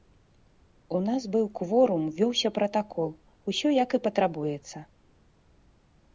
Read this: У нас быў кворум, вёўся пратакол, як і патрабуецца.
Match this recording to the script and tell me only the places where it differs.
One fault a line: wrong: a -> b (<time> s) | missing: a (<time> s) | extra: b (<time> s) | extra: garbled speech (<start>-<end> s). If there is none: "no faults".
extra: усё (3.5 s)